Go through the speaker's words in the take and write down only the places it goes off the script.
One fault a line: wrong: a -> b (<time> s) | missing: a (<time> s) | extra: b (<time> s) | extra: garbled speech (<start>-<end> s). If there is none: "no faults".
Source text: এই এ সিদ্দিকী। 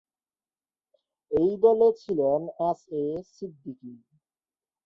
extra: দলে ছিলেন এস (1.6 s)